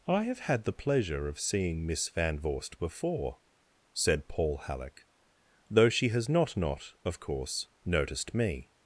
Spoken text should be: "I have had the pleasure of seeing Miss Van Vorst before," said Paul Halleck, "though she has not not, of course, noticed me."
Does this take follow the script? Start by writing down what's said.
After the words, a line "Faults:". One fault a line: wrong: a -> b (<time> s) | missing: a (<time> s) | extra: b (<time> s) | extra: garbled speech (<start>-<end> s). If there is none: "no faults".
"I have had the pleasure of seeing Miss Van Vorst before," said Paul Halleck, "though she has not not, of course, noticed me."
Faults:
no faults